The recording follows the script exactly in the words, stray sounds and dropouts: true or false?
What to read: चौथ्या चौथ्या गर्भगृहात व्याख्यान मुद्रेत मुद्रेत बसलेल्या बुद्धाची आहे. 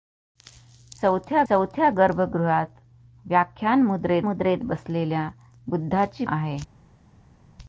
true